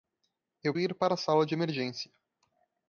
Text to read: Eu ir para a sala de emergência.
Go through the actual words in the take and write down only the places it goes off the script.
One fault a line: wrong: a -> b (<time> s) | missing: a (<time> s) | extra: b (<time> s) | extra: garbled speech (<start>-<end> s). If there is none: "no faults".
no faults